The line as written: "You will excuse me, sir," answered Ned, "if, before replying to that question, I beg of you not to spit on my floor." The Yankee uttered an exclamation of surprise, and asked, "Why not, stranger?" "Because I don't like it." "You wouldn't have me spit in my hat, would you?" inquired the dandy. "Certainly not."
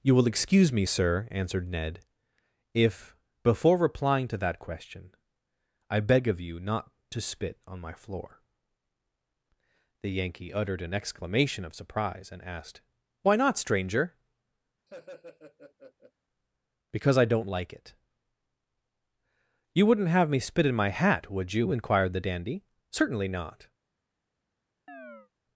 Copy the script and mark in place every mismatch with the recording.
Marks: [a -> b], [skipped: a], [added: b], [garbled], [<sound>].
"You will excuse me, sir," answered Ned, "if, before replying to that question, I beg of you not to spit on my floor." The Yankee uttered an exclamation of surprise, and asked, "Why not, stranger?" [laugh] "Because I don't like it." "You wouldn't have me spit in my hat, would you?" inquired the dandy. "Certainly not." [chirp]